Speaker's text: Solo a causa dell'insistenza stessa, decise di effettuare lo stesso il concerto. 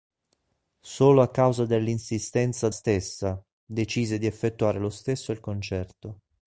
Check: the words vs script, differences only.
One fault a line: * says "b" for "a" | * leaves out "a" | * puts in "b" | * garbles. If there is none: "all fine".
all fine